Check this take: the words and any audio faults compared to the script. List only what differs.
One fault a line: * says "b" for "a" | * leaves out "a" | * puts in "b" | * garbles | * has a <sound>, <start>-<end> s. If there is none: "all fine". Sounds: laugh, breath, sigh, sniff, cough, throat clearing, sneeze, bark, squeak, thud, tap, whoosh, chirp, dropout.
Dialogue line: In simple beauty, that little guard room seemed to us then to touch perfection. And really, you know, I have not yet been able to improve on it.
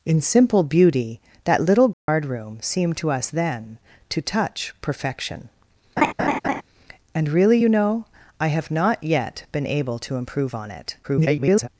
* has a dropout, 1.9-2.1 s
* has a laugh, 6.0-6.6 s
* garbles